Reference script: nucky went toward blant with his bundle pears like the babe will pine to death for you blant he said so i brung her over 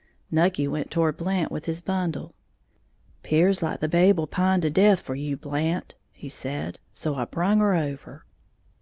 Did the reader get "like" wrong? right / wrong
right